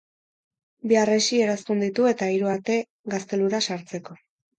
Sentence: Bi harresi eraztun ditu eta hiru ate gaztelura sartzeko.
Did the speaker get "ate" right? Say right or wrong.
right